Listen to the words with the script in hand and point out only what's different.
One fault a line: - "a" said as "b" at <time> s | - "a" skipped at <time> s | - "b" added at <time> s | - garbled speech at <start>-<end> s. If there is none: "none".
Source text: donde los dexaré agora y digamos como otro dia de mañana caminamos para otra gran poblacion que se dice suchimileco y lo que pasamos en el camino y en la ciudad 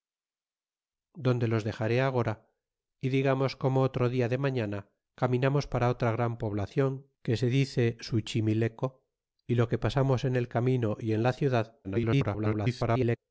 - garbled speech at 11.8-13.2 s